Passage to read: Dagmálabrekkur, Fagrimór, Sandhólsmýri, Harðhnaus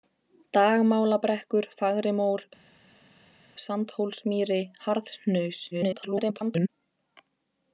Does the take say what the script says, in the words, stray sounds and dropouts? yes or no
no